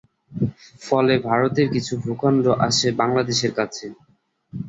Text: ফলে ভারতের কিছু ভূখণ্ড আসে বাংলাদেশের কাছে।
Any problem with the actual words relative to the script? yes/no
no